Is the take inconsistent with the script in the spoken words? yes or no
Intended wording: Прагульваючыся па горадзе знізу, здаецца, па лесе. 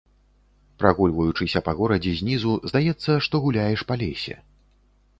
yes